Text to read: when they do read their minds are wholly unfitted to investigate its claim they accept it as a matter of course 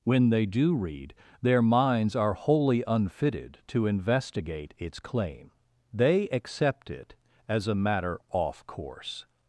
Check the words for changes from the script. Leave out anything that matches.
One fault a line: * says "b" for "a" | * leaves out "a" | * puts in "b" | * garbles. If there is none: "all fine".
* says "off" for "of"